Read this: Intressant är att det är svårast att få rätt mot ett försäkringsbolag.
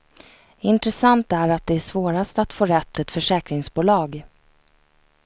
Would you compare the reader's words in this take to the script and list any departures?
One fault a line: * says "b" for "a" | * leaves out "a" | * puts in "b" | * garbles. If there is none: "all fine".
* leaves out "mot"